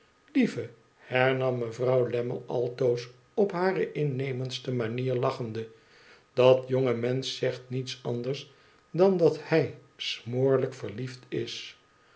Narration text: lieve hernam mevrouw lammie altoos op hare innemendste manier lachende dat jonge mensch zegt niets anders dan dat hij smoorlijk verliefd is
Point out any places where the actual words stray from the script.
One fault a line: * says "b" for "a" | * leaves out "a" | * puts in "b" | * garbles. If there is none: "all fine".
all fine